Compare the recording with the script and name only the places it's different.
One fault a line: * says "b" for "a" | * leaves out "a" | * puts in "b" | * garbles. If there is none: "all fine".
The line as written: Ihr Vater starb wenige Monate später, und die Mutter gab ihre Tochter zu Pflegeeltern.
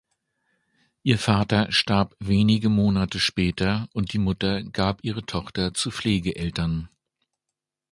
all fine